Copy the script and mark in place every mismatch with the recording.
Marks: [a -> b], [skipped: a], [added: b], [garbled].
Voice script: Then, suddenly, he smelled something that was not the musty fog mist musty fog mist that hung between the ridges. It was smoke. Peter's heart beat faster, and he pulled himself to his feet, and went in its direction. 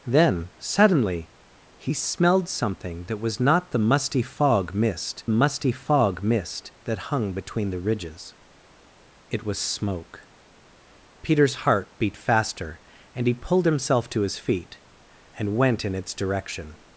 Then, suddenly, he smelled something that was not the musty fog mist musty fog mist that hung between the ridges. It was smoke. Peter's heart beat faster, and he pulled himself to his feet, and went in its direction.